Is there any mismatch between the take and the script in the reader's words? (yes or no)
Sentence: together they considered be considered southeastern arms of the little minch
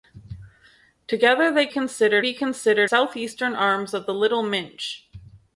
no